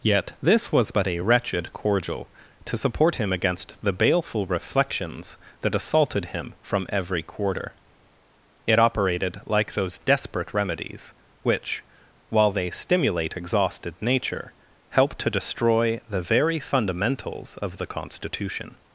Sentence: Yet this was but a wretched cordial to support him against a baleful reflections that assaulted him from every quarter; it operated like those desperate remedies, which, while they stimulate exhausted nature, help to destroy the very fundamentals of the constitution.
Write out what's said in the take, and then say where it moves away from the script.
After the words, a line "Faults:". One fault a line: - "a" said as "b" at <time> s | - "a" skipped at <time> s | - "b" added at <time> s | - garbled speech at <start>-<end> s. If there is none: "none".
Yet this was but a wretched cordial to support him against the baleful reflections that assaulted him from every quarter; it operated like those desperate remedies, which, while they stimulate exhausted nature, help to destroy the very fundamentals of the constitution.
Faults:
- "a" said as "the" at 3.8 s